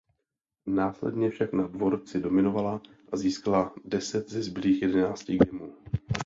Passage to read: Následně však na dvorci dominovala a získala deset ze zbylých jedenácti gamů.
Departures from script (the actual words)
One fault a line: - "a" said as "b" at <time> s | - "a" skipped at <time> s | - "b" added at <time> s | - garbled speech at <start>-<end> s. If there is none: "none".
none